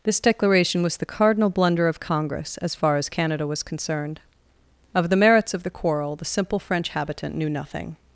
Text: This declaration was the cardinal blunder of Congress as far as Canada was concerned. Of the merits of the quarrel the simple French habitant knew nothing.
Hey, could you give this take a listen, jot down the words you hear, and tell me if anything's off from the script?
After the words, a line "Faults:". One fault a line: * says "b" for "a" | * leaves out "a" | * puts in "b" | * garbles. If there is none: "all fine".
This declaration was the cardinal blunder of Congress as far as Canada was concerned. Of the merits of the quarrel the simple French habitant knew nothing.
Faults:
all fine